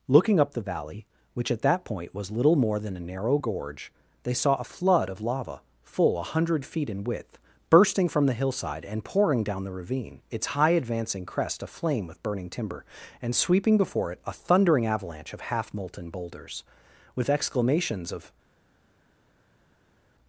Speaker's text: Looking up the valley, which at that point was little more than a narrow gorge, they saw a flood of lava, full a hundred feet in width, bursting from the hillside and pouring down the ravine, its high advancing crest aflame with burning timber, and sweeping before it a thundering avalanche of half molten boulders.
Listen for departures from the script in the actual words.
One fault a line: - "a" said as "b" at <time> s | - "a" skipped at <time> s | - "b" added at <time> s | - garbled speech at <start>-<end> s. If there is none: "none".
- "With exclamations of" added at 17.1 s